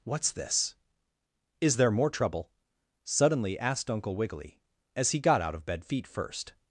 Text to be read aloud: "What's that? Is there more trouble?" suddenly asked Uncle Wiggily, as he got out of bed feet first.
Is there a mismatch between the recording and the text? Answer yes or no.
yes